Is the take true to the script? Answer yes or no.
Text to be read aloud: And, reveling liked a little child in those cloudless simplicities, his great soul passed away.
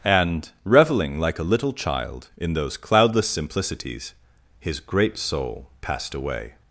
no